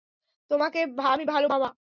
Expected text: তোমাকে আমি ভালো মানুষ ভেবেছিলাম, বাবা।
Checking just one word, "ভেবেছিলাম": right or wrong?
wrong